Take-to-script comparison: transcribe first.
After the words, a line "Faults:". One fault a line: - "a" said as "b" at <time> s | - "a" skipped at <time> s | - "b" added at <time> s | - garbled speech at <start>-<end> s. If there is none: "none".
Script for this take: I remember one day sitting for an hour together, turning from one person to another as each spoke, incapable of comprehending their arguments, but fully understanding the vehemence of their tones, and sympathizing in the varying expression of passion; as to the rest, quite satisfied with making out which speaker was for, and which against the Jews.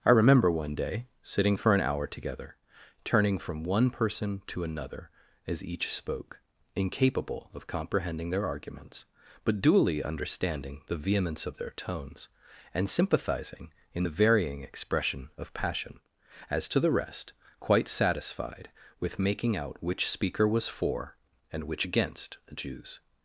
I remember one day sitting for an hour together, turning from one person to another as each spoke, incapable of comprehending their arguments, but duly understanding the vehemence of their tones, and sympathizing in the varying expression of passion; as to the rest, quite satisfied with making out which speaker was for, and which against the Jews.
Faults:
- "fully" said as "duly" at 9.6 s